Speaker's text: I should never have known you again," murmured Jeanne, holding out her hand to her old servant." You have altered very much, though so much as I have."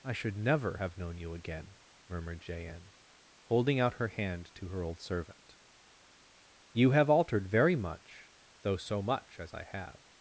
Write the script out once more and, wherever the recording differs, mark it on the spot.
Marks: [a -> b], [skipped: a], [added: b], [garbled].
I should never have known you again," murmured Jeanne, holding out her hand to her old servant." You have altered very much, though so much as I have."